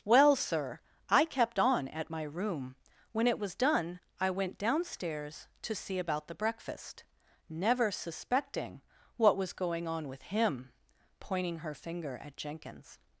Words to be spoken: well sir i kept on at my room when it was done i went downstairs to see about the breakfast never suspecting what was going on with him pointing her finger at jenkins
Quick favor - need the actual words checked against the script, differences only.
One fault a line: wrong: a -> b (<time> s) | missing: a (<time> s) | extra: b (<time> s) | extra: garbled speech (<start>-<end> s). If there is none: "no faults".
no faults